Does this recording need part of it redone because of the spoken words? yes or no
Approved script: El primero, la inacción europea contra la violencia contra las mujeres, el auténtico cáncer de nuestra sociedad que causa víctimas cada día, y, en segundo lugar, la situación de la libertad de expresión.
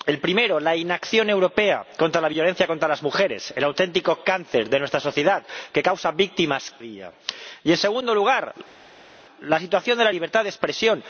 yes